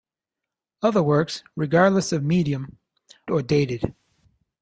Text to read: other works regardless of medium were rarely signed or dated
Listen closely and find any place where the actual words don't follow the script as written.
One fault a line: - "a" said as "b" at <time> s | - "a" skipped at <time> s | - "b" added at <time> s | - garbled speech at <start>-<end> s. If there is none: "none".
- "were rarely signed" skipped at 2.8 s